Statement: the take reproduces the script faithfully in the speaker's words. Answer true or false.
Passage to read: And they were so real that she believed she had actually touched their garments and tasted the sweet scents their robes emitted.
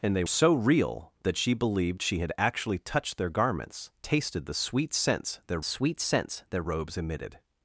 false